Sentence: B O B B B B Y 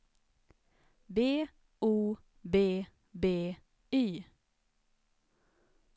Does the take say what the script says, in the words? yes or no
no